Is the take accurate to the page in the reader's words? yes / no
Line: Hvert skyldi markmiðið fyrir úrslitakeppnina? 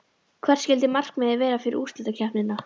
no